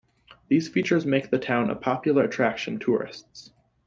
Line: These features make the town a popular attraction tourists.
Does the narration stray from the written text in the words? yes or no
no